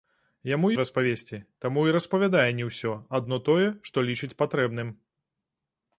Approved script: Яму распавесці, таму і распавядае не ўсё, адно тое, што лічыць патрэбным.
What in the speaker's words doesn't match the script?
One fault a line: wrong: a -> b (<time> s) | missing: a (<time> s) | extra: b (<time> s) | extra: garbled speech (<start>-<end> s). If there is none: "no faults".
no faults